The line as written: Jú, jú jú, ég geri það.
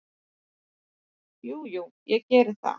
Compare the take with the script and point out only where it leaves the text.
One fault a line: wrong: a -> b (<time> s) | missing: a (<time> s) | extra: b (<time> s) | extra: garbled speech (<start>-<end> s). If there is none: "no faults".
missing: jú (1.8 s)